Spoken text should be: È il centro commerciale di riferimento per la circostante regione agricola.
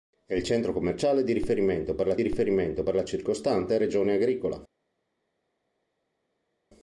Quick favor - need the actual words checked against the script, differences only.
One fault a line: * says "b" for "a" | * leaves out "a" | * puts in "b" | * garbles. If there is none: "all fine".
* puts in "riferimento per la"